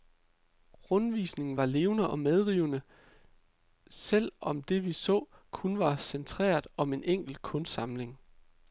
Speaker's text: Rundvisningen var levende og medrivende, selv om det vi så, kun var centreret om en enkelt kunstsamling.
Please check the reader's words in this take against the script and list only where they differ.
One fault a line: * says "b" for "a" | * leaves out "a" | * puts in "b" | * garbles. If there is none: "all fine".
all fine